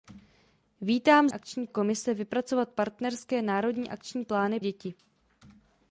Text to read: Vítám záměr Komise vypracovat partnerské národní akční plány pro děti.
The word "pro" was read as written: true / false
false